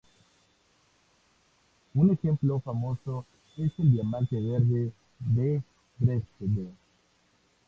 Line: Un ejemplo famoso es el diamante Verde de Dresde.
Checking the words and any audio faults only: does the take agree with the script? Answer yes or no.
yes